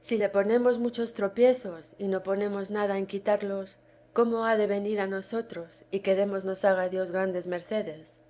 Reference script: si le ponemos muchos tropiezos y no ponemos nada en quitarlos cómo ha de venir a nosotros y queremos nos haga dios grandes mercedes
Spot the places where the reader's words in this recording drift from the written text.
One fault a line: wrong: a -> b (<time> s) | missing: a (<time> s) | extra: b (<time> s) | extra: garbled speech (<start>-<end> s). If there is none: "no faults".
no faults